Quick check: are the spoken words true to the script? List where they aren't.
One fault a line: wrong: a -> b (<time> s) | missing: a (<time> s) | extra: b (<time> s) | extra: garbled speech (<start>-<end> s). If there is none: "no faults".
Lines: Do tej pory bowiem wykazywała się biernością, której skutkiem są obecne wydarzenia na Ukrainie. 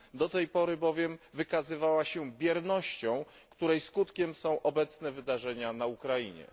no faults